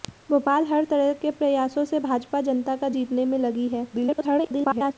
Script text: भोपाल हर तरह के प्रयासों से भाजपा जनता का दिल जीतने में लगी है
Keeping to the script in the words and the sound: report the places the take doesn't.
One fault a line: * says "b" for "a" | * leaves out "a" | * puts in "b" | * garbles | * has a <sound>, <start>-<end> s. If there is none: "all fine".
* leaves out "दिल"
* garbles